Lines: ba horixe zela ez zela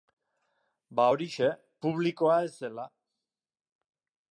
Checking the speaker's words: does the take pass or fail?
fail